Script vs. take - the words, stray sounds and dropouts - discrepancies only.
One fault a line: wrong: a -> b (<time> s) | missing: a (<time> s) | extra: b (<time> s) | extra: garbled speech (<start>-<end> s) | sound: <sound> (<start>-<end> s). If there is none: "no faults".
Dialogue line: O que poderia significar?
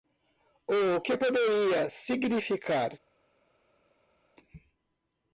no faults